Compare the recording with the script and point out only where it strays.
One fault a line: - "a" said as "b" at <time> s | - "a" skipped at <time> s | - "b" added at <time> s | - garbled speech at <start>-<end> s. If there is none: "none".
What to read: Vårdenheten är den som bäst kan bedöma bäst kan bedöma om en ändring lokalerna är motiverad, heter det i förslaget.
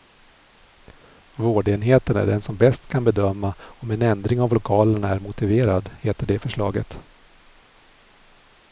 - "bäst kan bedöma" skipped at 3.5 s
- "av" added at 4.4 s